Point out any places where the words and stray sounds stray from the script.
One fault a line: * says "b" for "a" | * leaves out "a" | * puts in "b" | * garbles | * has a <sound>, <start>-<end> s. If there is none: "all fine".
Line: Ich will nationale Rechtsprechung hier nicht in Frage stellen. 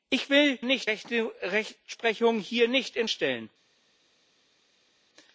* says "nicht" for "nationale"
* leaves out "Frage"